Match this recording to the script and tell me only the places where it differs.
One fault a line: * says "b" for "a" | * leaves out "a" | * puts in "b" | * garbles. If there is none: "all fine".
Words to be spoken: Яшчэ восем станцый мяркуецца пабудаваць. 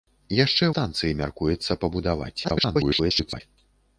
* leaves out "восем"
* garbles